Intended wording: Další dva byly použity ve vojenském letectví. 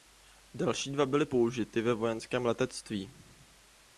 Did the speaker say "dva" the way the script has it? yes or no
yes